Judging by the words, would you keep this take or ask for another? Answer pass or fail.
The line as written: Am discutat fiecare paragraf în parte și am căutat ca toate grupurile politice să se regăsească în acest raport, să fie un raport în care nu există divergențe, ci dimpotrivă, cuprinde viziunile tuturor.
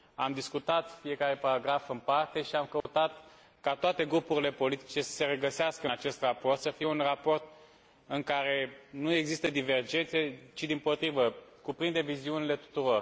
pass